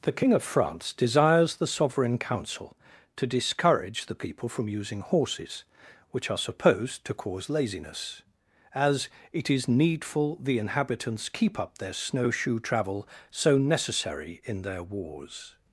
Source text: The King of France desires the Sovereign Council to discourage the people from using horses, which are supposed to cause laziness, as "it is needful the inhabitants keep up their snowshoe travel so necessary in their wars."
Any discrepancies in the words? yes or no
no